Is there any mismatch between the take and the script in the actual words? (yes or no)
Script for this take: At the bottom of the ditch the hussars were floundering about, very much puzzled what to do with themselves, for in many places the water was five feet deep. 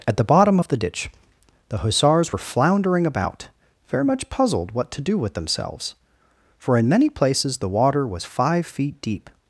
no